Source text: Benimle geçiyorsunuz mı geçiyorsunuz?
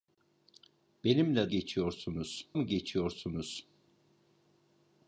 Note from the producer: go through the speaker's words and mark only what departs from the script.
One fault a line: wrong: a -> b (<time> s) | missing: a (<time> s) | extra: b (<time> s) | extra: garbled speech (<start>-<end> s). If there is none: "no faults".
no faults